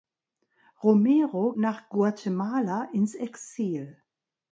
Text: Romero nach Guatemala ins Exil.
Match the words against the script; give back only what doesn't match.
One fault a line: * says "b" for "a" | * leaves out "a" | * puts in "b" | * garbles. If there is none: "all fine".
all fine